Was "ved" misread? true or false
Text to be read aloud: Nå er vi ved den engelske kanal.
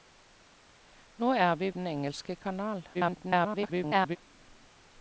true